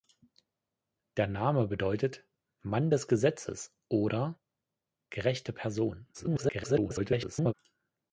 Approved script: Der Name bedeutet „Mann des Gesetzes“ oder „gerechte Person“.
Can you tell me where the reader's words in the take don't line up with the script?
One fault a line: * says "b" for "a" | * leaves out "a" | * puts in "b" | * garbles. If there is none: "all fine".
* garbles